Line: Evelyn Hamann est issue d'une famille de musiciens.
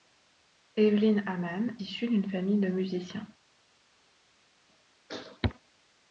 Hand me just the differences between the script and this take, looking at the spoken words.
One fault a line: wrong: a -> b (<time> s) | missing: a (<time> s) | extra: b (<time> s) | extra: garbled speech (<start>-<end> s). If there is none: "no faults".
missing: est (1.8 s)